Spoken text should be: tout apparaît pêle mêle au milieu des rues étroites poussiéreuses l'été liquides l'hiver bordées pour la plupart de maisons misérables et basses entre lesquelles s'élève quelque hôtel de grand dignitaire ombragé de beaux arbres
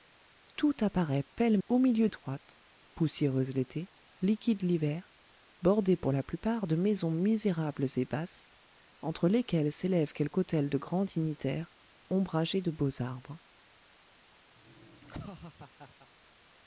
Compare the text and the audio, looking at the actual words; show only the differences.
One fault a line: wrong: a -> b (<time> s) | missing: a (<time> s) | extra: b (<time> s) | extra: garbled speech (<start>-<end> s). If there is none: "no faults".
missing: mêle (1.6 s)
missing: des rues (2.1 s)